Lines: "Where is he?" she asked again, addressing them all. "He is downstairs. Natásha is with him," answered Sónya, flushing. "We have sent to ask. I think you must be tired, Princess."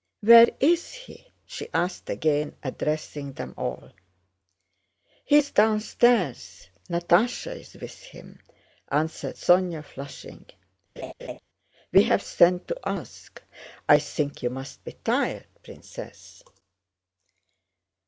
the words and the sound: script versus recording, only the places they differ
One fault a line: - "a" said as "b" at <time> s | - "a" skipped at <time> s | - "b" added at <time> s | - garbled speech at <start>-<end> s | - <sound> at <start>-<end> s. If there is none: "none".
- laugh at 11.0-11.4 s